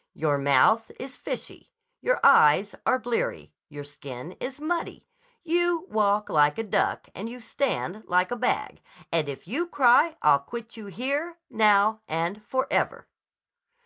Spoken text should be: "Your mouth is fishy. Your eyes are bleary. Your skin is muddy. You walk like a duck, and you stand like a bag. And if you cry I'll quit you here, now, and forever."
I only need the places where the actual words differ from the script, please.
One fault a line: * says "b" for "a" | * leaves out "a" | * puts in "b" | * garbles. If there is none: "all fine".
all fine